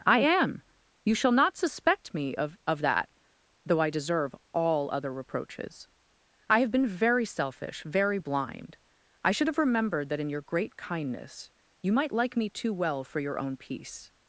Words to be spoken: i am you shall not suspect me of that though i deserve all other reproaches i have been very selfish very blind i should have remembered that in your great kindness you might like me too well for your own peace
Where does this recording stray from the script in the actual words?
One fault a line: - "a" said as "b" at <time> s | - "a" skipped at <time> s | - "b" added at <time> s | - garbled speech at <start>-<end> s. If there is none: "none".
- "of" added at 2.6 s